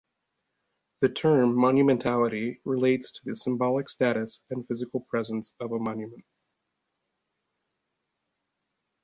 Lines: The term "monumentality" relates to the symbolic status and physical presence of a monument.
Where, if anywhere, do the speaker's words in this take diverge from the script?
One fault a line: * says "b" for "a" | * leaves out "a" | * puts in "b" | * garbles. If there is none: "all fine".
all fine